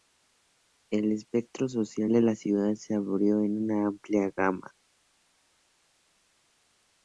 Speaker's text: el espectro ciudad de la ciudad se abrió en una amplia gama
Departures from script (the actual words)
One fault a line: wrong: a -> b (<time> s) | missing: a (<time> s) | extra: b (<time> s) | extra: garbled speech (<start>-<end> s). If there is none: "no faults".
wrong: ciudad -> social (1.7 s)